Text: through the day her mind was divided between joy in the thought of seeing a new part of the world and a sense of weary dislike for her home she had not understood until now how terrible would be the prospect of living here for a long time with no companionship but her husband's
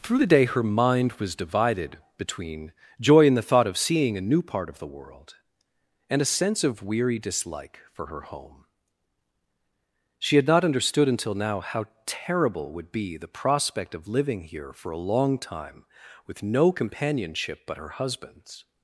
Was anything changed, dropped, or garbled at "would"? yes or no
no